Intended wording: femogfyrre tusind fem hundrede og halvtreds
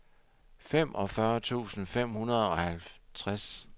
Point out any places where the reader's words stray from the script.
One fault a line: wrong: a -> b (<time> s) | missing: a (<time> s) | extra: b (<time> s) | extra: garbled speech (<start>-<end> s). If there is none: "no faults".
no faults